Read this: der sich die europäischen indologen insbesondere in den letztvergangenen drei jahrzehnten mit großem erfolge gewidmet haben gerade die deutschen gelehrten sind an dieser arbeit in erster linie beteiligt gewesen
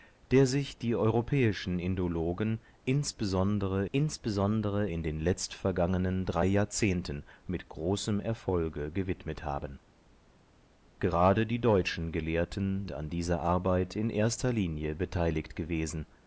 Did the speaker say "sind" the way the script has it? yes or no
no